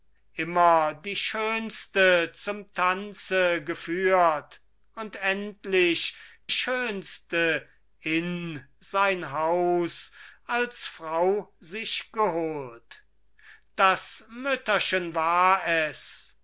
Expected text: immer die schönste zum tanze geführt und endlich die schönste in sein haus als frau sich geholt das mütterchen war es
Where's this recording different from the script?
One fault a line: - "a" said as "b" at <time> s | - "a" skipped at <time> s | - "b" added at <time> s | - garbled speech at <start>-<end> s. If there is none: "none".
- "die" skipped at 6.2 s